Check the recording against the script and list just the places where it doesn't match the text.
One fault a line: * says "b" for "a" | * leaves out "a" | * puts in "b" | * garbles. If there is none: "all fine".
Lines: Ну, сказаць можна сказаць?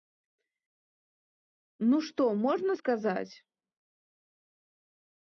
* says "што" for "сказаць"